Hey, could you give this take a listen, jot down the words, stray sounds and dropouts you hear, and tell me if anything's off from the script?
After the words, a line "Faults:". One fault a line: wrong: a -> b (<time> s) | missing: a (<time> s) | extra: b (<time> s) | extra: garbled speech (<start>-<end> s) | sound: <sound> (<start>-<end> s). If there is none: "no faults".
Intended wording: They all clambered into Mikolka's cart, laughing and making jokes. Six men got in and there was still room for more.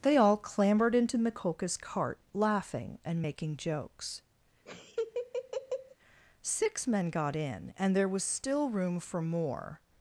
They all clambered into Mikolka's cart, laughing and making jokes. Six men got in and there was still room for more.
Faults:
sound: laugh (4.7-6.0 s)